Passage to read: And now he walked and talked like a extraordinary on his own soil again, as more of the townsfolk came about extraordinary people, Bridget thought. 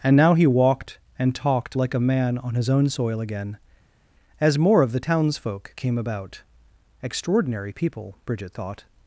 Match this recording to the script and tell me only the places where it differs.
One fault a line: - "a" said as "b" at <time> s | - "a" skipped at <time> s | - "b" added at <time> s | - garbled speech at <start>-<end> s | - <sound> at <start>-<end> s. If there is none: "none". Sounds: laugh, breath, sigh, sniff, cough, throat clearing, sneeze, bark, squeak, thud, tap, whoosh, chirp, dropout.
- "extraordinary" said as "man" at 2.0 s